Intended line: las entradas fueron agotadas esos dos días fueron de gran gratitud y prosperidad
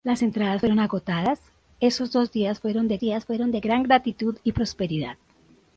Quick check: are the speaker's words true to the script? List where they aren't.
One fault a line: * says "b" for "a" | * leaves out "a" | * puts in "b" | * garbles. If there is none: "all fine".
* puts in "días fueron de"